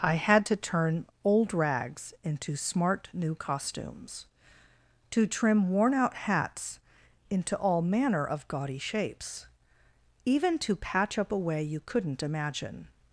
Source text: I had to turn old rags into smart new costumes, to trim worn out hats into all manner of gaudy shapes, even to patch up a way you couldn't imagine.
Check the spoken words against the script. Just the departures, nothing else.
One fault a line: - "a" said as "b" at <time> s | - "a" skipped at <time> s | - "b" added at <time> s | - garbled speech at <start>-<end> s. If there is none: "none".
none